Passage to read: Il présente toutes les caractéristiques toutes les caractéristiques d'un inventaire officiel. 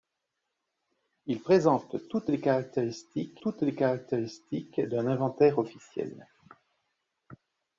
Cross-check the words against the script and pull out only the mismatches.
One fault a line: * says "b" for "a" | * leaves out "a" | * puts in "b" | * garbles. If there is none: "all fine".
all fine